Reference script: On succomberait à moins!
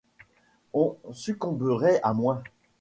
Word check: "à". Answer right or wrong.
right